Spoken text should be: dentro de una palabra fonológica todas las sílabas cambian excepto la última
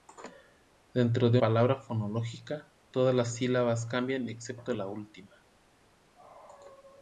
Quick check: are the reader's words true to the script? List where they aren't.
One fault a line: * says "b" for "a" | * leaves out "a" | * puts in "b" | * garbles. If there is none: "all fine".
* leaves out "una"